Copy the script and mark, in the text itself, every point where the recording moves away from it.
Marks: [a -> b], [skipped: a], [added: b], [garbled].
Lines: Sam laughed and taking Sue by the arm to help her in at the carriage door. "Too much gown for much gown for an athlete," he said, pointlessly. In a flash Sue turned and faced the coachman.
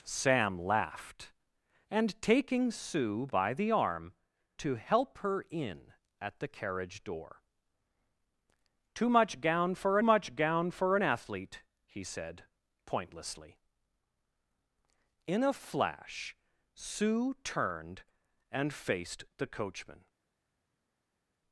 Sam laughed and taking Sue by the arm to help her in at the carriage door. "Too much gown for much gown for an athlete," he said, pointlessly. In a flash Sue turned and faced the coachman.